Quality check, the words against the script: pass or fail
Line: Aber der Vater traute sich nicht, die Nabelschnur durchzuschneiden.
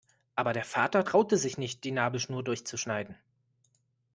pass